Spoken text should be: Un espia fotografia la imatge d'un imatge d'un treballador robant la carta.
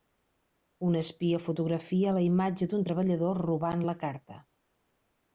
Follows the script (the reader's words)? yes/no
no